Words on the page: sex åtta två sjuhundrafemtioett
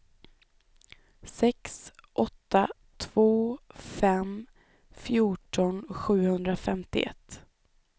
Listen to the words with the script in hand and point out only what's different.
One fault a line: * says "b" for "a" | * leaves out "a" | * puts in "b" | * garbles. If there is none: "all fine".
* puts in "fem fjorton"